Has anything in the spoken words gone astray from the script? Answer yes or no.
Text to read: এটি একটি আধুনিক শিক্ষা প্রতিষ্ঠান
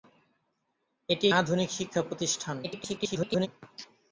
yes